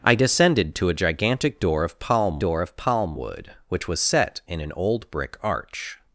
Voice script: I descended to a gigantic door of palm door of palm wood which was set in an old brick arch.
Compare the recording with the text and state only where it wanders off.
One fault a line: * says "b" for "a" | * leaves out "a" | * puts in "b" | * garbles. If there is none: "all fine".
all fine